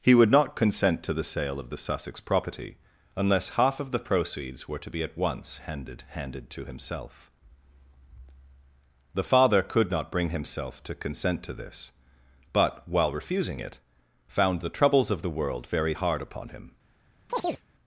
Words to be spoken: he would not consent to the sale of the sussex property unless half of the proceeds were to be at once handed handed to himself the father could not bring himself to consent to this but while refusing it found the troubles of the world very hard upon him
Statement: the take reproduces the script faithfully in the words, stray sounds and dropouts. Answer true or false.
false